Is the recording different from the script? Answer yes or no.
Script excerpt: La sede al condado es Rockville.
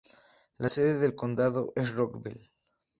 yes